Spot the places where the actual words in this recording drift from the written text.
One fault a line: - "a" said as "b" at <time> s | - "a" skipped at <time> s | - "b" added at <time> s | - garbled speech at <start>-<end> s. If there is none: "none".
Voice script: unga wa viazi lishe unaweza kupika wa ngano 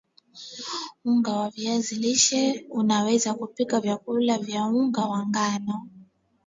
- "vyakula vya unga" added at 3.8 s